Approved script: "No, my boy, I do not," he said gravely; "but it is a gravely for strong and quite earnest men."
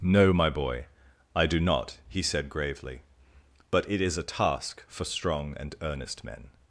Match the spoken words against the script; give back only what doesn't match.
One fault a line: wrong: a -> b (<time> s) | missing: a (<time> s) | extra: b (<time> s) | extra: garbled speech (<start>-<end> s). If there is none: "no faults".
wrong: gravely -> task (4.2 s)
missing: quite (5.8 s)